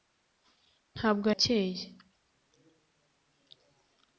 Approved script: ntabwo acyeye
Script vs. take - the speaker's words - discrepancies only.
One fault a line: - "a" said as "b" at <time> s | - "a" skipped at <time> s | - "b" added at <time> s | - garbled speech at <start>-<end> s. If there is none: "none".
none